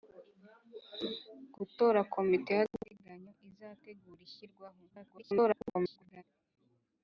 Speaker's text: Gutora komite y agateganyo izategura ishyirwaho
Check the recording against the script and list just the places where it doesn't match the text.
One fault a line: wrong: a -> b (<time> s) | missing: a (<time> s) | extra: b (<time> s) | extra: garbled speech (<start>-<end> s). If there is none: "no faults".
extra: garbled speech (4.9-6.2 s)